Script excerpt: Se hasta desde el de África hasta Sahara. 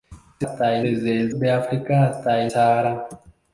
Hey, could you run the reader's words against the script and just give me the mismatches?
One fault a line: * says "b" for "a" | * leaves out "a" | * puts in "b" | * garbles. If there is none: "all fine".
all fine